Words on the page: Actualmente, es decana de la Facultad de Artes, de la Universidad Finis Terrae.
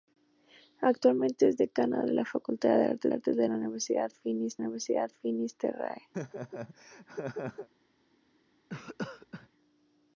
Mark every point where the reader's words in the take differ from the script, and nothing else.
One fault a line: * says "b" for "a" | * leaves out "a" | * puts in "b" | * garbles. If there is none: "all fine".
* puts in "Artes"
* puts in "Universidad Finis"